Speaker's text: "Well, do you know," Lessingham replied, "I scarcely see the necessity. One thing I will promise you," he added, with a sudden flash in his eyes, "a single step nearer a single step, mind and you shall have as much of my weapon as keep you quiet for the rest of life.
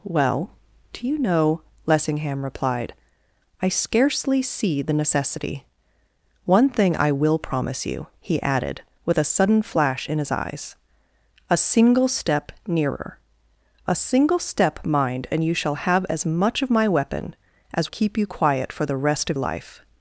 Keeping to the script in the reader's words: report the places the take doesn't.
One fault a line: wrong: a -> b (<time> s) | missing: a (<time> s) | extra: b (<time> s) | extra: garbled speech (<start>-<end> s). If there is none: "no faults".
no faults